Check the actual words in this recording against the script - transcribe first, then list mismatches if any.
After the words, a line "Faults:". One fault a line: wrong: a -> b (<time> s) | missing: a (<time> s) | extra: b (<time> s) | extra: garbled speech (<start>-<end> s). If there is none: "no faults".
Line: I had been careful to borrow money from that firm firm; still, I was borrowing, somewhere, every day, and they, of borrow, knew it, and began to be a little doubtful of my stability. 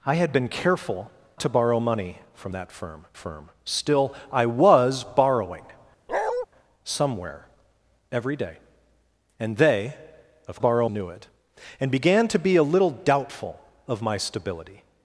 I had been careful to borrow money from that firm firm; still, I was borrowing, somewhere, every day, and they, of borrow, knew it, and began to be a little doubtful of my stability.
Faults:
no faults